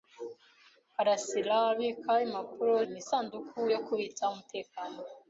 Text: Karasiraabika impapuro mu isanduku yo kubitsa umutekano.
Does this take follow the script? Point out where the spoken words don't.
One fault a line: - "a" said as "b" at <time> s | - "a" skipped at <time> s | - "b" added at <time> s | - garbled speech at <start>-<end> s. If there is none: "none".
none